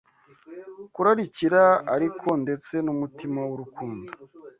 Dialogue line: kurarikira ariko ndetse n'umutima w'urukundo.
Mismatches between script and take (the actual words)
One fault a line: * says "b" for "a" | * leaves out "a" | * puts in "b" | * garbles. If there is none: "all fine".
all fine